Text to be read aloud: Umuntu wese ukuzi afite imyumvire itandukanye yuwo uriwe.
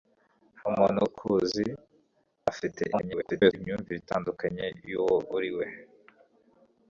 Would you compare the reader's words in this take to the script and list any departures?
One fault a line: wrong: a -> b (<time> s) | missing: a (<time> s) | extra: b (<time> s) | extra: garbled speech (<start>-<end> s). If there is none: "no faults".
missing: wese (1.0 s)
extra: garbled speech (2.9-3.5 s)